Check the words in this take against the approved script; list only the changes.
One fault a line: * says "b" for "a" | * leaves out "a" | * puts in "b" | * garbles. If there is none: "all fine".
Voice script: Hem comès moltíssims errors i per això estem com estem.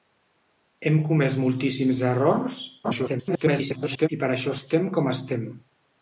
* garbles